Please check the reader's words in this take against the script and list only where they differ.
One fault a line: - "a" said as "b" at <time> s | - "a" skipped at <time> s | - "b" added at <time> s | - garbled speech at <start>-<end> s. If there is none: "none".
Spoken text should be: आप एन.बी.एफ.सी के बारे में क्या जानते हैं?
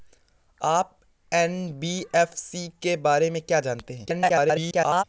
- garbled speech at 4.0-5.0 s